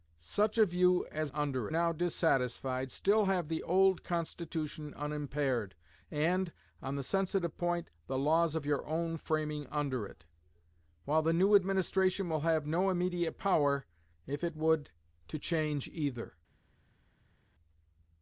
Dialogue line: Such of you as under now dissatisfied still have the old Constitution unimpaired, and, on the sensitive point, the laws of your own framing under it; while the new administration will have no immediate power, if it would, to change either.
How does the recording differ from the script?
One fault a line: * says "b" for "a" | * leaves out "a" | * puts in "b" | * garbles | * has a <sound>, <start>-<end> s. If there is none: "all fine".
all fine